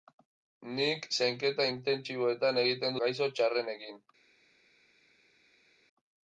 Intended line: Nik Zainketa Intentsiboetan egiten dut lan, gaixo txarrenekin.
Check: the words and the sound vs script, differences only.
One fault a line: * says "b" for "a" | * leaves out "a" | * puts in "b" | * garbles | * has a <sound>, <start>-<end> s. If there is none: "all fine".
* leaves out "dut lan"